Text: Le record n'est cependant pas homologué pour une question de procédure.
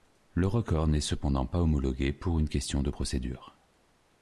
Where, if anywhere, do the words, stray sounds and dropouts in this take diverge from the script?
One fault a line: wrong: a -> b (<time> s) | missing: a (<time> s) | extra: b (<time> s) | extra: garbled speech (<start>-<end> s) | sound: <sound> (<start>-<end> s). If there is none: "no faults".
no faults